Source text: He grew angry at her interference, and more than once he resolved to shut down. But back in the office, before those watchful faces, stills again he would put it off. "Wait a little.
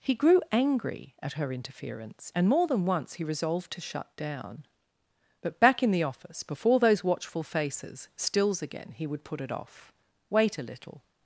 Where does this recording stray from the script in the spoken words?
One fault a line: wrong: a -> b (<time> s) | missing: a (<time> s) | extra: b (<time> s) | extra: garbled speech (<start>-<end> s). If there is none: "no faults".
no faults